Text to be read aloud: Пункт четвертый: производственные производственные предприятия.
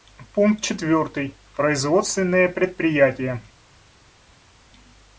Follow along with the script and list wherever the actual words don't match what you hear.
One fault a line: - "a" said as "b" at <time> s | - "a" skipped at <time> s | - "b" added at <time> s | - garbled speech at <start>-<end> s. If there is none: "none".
- "производственные" skipped at 2.5 s